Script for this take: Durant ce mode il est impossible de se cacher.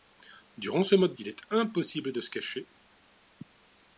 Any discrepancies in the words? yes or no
no